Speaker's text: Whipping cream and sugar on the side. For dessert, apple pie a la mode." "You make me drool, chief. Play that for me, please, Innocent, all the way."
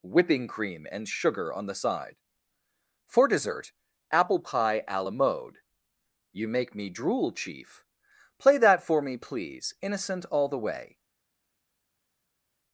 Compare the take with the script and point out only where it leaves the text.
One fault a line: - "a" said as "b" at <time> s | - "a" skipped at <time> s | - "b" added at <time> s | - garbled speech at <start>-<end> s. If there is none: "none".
none